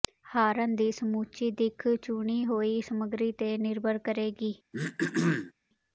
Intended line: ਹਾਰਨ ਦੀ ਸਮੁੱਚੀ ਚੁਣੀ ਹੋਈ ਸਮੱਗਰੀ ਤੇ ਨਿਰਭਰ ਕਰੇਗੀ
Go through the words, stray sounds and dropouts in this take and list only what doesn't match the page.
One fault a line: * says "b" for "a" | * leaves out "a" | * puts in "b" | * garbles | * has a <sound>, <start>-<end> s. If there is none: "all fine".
* puts in "ਦਿੱਖ"
* has a throat clearing, 4.7-5.5 s